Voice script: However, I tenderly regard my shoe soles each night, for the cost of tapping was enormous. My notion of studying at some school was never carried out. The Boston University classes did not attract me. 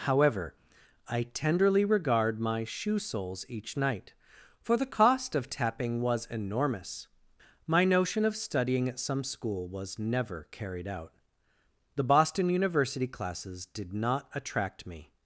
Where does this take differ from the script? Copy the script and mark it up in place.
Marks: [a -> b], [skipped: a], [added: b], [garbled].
However, I tenderly regard my shoe soles each night, for the cost of tapping was enormous. My notion of studying at some school was never carried out. The Boston University classes did not attract me.